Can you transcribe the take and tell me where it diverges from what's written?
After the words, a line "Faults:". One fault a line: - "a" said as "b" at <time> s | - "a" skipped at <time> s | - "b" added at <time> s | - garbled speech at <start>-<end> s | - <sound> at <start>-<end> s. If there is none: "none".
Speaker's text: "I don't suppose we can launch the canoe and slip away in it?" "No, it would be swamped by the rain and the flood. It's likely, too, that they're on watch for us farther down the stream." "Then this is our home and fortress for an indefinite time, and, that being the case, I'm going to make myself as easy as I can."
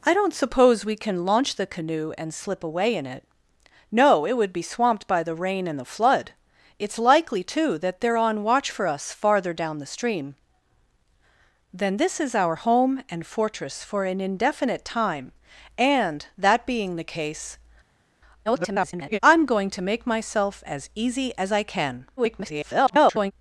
"I don't suppose we can launch the canoe and slip away in it?" "No, it would be swamped by the rain and the flood. It's likely, too, that they're on watch for us farther down the stream." "Then this is our home and fortress for an indefinite time, and, that being the case, [garbled] I'm going to make myself as easy as I can." [garbled]
Faults:
- garbled speech at 18.4-19.2 s
- garbled speech at 22.2-23.3 s